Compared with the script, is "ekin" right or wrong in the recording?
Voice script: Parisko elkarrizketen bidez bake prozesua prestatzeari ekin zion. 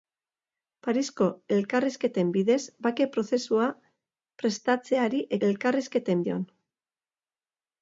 wrong